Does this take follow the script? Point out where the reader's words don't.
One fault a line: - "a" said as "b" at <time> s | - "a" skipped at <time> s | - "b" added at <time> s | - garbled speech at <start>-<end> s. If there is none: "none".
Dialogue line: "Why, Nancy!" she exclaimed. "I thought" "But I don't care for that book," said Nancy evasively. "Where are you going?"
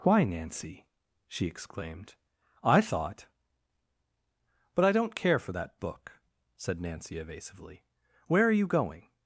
none